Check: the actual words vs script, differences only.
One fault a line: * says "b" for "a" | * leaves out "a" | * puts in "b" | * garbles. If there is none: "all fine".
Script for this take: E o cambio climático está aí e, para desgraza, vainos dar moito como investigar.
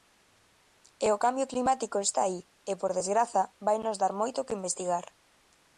* says "por" for "para"
* says "que" for "como"